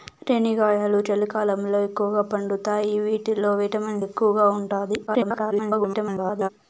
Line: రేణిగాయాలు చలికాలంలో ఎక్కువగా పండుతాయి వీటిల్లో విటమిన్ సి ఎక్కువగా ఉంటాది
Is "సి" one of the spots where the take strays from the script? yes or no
yes